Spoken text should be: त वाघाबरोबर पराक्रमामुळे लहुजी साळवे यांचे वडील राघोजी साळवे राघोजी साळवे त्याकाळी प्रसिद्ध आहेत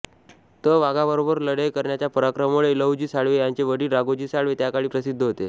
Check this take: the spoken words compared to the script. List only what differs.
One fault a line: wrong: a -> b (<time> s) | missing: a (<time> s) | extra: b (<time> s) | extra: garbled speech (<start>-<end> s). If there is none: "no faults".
extra: लढाई करण्याच्या (1.4 s)
missing: राघोजी साळवे (4.5 s)
wrong: आहेत -> होते (5.2 s)